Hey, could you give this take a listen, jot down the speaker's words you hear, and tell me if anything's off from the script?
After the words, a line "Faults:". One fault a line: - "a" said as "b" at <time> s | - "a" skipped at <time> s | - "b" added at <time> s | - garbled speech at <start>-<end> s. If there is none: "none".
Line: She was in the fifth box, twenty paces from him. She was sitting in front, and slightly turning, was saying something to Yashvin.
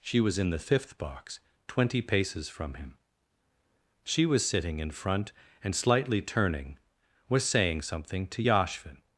She was in the fifth box, twenty paces from him. She was sitting in front, and slightly turning, was saying something to Yashvin.
Faults:
none